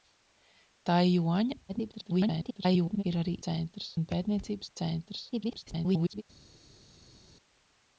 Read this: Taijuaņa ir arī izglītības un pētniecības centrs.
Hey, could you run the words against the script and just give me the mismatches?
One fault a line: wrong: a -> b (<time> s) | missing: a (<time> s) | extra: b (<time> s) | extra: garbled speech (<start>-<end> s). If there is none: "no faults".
extra: garbled speech (1.7-3.0 s)
wrong: izglītības -> centrs (3.5 s)
extra: garbled speech (5.3-6.2 s)